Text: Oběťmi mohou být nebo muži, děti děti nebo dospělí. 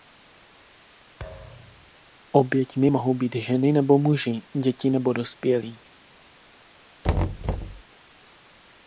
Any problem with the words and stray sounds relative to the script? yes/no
yes